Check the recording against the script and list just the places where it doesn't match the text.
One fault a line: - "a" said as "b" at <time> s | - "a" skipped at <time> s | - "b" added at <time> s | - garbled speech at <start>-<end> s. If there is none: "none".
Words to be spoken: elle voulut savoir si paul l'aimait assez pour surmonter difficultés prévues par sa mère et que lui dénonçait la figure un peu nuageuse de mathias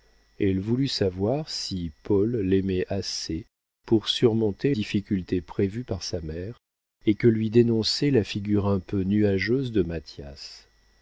none